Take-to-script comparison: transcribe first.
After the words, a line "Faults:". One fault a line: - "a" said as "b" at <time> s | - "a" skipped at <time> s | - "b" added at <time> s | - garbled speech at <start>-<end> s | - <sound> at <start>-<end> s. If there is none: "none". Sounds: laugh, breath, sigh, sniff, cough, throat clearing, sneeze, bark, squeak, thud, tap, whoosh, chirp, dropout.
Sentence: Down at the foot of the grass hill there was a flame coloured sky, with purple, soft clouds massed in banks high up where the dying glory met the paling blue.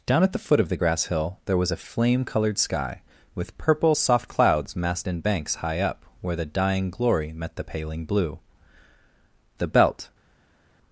Down at the foot of the grass hill there was a flame coloured sky, with purple, soft clouds massed in banks high up where the dying glory met the paling blue. The belt
Faults:
- "The belt" added at 9.6 s